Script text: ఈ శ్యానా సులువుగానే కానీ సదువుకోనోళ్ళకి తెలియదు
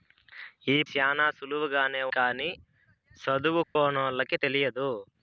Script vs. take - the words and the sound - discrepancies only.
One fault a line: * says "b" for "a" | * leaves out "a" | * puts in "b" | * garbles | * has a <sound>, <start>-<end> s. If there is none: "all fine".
* has a dropout, 3.6-3.8 s